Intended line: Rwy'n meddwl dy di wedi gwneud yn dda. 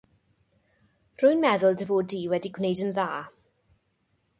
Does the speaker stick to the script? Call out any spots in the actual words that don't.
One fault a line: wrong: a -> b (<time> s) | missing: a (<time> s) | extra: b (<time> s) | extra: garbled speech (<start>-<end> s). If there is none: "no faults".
extra: fod (1.9 s)